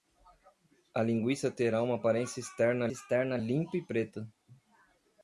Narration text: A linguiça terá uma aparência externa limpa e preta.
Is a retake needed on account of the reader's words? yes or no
yes